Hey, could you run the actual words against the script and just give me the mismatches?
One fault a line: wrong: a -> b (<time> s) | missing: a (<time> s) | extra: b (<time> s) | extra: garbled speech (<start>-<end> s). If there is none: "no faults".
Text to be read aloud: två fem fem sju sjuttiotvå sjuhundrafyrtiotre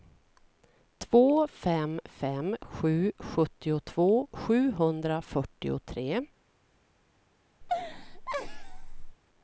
no faults